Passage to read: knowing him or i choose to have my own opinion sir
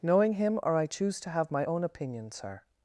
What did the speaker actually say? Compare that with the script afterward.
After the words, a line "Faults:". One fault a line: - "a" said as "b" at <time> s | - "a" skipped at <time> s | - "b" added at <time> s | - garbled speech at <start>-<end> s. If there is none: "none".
knowing him or i choose to have my own opinion sir
Faults:
none